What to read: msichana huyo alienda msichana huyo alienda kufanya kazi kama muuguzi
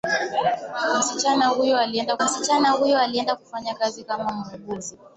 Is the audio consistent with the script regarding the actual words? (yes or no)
yes